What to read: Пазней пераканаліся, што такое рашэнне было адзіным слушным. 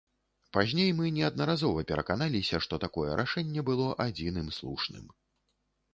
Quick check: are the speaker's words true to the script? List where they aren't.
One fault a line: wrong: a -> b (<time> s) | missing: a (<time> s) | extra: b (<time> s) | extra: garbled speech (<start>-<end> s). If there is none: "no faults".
extra: мы неаднаразова (1.0 s)